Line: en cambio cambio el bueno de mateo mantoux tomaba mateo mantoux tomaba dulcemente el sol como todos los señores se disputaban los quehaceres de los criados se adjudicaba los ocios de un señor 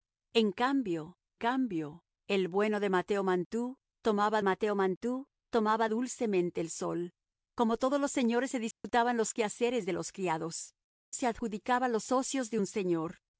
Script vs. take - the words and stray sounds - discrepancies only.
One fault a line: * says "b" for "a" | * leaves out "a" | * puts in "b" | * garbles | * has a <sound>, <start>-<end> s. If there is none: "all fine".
* has a dropout, 8.7-8.8 s